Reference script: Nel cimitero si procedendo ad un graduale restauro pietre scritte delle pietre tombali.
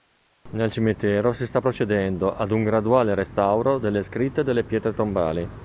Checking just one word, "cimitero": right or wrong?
right